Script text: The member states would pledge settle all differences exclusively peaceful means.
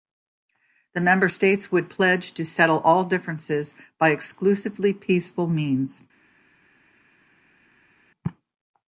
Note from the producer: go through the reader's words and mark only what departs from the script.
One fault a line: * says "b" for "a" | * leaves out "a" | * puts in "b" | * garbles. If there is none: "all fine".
* puts in "to"
* puts in "by"